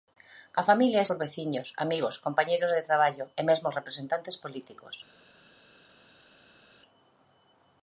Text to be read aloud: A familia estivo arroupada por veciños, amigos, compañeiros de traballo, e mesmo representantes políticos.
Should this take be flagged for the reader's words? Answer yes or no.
yes